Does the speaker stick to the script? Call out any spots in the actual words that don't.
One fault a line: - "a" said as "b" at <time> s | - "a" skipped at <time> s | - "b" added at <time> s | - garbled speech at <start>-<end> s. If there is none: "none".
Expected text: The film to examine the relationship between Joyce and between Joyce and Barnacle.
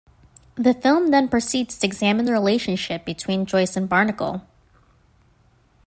- "then proceeds" added at 1.1 s
- "between Joyce and" skipped at 3.9 s